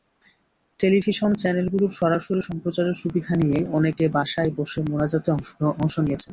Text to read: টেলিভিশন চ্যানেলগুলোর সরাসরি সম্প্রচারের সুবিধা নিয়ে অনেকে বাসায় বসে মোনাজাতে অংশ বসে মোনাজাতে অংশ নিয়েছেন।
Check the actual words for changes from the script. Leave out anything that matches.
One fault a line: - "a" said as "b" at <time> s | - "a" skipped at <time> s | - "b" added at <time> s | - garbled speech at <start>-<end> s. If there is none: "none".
- "বসে মোনাজাতে অংশ" skipped at 6.0 s